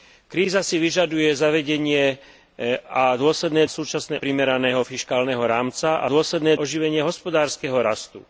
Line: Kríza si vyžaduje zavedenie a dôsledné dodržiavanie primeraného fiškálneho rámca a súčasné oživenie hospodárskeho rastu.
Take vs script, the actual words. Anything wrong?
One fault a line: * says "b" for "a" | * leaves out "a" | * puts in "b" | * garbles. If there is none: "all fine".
* says "súčasné" for "dodržiavanie"
* says "dôsledné" for "súčasné"